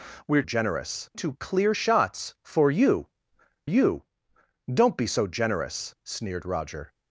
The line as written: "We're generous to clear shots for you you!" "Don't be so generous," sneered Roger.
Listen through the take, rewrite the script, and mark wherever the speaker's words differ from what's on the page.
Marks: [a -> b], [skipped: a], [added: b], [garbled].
"We're generous to clear shots for you you!" "Don't be so generous," sneered Roger.